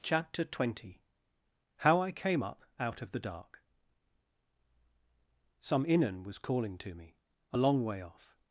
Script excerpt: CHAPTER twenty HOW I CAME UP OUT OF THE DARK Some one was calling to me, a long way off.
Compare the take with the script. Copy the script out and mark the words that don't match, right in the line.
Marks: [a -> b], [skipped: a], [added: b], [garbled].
CHAPTER twenty HOW I CAME UP OUT OF THE DARK Some [one -> inan] was calling to me, a long way off.